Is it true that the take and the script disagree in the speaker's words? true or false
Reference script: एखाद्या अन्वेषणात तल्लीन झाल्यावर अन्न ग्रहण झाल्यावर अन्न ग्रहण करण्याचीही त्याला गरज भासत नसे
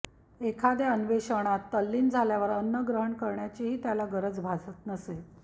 true